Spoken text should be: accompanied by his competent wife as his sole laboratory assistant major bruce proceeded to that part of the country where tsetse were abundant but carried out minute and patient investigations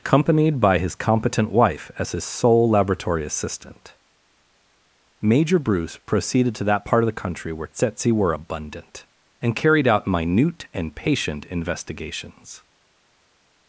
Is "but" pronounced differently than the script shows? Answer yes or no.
yes